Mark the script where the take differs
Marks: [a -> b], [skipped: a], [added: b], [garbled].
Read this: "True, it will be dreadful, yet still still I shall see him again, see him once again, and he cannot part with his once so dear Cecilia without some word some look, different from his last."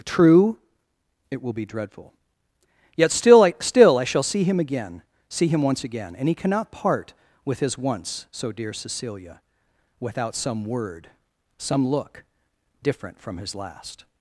"True, it will be dreadful, yet still [added: I] still I shall see him again, see him once again, and he cannot part with his once so dear Cecilia without some word some look, different from his last."